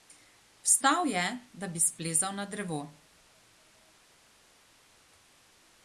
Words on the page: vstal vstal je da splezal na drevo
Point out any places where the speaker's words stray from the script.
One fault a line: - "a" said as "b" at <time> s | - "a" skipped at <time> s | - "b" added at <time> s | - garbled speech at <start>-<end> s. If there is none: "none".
- "vstal" skipped at 1.1 s
- "bi" added at 1.7 s